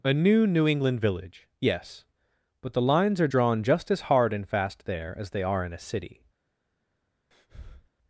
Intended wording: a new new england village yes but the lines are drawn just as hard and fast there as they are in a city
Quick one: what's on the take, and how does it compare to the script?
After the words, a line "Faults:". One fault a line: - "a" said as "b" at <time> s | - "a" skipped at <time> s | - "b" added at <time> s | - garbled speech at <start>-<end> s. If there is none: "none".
a new new england village yes but the lines are drawn just as hard and fast there as they are in a city
Faults:
none